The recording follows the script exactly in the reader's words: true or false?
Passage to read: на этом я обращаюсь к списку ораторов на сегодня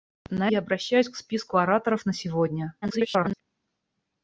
false